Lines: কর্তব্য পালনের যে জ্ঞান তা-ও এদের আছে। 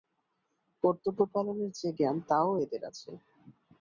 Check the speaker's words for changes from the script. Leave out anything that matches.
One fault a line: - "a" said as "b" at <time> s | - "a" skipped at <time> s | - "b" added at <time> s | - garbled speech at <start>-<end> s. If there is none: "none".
none